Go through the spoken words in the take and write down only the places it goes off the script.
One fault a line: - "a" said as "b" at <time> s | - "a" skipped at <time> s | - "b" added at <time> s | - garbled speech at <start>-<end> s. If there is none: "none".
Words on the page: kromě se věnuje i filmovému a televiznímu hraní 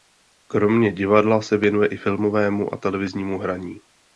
- "divadla" added at 0.9 s